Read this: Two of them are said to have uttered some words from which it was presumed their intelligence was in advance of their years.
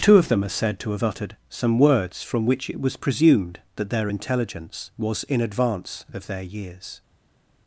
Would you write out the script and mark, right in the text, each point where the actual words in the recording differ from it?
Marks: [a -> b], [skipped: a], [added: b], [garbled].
Two of them are said to have uttered some words from which it was presumed [added: that] their intelligence was in advance of their years.